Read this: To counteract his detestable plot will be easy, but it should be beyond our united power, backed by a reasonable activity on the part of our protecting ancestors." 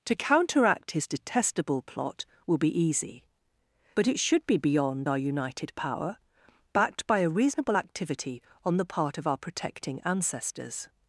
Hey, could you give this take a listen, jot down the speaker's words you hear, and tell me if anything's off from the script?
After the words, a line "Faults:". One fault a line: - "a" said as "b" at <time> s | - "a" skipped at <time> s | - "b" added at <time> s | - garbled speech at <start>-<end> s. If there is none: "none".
To counteract his detestable plot will be easy, but it should be beyond our united power, backed by a reasonable activity on the part of our protecting ancestors."
Faults:
none